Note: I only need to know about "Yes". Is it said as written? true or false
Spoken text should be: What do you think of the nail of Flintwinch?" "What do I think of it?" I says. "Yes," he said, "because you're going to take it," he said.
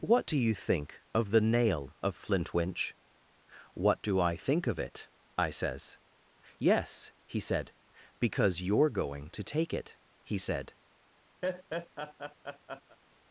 true